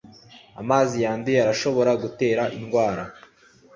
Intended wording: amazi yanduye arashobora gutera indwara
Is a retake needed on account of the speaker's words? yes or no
no